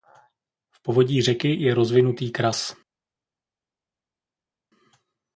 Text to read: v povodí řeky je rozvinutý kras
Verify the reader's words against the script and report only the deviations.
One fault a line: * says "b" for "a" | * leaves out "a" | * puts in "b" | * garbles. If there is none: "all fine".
all fine